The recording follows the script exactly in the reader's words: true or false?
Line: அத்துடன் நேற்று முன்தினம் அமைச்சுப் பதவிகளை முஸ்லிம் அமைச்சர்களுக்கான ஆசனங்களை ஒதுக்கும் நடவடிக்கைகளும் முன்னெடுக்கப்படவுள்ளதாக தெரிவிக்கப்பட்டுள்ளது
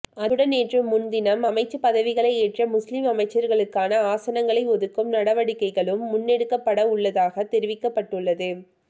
false